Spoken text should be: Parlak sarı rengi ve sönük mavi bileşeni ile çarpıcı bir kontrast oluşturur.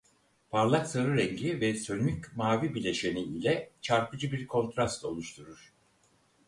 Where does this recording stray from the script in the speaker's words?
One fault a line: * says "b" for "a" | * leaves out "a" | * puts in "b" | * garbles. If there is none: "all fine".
all fine